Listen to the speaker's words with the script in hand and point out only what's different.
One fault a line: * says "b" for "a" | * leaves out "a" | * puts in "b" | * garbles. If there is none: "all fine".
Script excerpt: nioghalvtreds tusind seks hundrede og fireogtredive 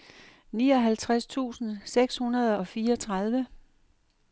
all fine